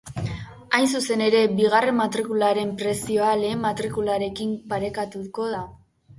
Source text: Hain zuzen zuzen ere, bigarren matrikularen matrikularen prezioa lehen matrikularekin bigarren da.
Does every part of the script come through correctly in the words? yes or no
no